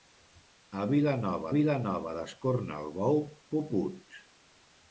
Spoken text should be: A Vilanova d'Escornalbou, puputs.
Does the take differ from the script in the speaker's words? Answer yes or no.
yes